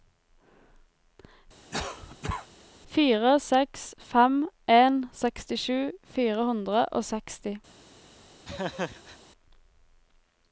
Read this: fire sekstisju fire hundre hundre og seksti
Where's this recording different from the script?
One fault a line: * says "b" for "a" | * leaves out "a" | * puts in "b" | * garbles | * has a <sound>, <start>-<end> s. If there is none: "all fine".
* has a cough, 1.7-2.5 s
* puts in "seks fem en"
* leaves out "hundre"
* has a laugh, 8.4-9.2 s